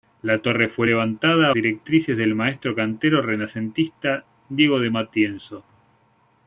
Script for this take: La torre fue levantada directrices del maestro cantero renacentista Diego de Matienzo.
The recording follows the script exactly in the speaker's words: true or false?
true